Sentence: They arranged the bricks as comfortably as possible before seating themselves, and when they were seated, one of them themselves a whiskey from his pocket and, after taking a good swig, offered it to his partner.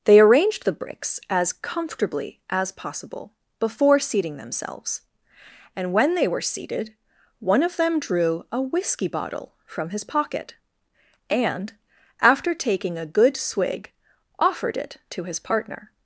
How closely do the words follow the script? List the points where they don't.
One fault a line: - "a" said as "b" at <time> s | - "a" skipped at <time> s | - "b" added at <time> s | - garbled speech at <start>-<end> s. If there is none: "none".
- "themselves" said as "drew" at 8.0 s
- "bottle" added at 9.1 s